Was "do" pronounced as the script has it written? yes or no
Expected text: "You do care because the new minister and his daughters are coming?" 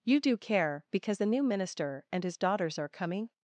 yes